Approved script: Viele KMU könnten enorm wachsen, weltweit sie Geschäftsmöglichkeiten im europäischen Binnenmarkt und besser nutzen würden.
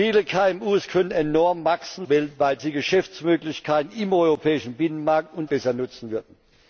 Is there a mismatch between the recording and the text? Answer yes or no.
no